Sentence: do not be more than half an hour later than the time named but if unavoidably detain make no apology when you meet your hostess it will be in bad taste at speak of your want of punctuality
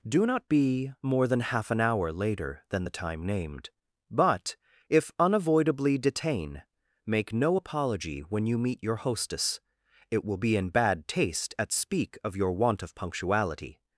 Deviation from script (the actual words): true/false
false